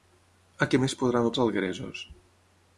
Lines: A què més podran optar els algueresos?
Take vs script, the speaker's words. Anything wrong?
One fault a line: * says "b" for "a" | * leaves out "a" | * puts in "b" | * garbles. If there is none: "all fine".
* leaves out "optar"